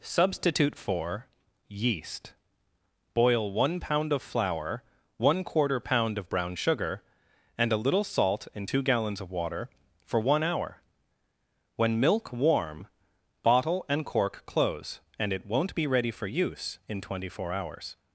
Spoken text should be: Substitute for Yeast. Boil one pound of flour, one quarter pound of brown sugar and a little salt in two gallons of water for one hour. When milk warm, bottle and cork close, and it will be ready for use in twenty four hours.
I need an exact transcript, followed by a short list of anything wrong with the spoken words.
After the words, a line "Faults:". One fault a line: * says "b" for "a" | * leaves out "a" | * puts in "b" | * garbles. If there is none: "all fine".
Substitute for Yeast. Boil one pound of flour, one quarter pound of brown sugar and a little salt in two gallons of water for one hour. When milk warm, bottle and cork close, and it won't be ready for use in twenty four hours.
Faults:
* says "won't" for "will"